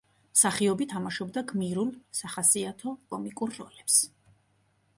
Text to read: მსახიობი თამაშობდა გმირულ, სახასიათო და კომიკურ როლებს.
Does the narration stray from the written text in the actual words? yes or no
yes